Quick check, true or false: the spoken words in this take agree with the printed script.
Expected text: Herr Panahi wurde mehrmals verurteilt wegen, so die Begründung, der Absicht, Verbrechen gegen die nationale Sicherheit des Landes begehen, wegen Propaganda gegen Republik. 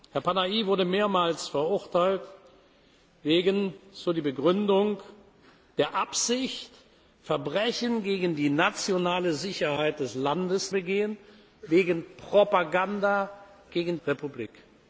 true